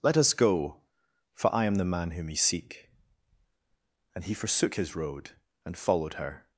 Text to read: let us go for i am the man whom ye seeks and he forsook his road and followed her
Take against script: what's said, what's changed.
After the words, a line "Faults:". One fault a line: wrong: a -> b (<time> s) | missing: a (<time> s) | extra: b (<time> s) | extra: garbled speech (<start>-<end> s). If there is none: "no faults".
let us go for i am the man whom ye seek and he forsook his road and followed her
Faults:
wrong: seeks -> seek (2.4 s)